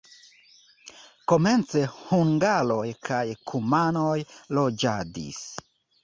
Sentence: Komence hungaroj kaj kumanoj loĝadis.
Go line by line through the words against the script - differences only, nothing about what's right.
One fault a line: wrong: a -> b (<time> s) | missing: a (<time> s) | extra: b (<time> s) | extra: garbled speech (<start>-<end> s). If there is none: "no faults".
no faults